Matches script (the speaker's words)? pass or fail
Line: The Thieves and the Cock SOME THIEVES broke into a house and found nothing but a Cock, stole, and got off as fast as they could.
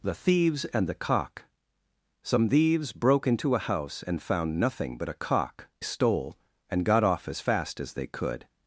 pass